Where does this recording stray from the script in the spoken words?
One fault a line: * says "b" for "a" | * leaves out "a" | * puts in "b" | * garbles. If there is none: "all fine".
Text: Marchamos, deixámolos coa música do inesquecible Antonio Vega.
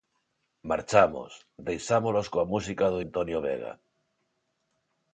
* leaves out "inesquecible"